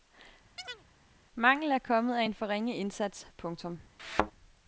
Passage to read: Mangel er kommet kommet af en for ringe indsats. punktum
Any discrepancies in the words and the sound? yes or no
yes